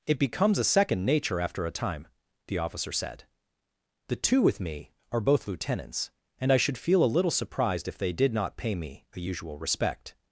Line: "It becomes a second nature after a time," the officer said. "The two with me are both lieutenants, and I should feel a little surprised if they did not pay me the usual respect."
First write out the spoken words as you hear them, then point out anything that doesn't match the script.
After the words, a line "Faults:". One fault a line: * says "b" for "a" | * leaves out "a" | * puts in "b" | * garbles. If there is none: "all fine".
"It becomes a second nature after a time," the officer said. "The two with me are both lieutenants, and I should feel a little surprised if they did not pay me a usual respect."
Faults:
* says "a" for "the"